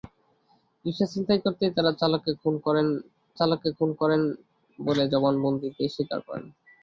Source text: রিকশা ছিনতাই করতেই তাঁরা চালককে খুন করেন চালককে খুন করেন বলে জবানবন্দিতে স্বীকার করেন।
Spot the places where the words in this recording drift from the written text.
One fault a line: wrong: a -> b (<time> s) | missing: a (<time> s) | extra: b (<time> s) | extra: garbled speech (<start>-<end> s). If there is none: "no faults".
no faults